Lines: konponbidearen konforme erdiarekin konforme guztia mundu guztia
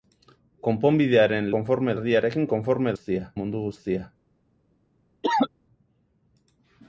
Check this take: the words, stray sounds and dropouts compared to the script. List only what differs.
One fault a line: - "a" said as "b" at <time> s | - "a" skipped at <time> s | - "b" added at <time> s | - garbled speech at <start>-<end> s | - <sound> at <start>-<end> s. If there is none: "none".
- cough at 5.2-5.5 s